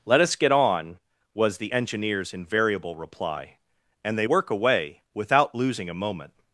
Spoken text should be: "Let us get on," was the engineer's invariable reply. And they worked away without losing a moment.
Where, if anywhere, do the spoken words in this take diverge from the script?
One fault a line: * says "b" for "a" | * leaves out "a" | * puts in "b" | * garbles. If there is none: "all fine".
* says "work" for "worked"